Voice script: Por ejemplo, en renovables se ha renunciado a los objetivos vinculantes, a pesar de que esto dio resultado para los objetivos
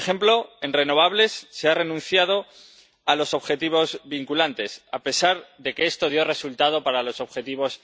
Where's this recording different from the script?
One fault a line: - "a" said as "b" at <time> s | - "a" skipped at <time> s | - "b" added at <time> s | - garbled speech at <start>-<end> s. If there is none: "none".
none